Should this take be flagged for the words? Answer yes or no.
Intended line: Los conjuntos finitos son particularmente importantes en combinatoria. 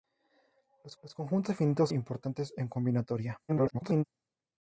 yes